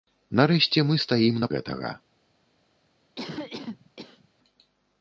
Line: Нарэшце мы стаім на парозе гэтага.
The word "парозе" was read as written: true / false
false